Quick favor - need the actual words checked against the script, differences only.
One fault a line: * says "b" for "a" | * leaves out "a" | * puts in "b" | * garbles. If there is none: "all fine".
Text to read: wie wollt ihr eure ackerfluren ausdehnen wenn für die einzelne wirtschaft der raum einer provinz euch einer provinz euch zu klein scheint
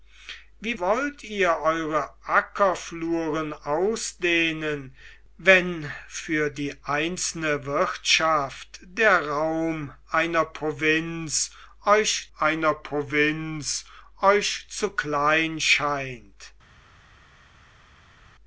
all fine